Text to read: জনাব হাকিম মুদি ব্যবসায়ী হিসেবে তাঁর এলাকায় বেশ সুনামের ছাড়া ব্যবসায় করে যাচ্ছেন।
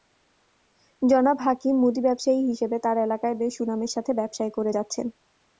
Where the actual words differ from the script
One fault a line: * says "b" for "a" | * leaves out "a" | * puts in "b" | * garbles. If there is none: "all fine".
* says "সাথে" for "ছাড়া"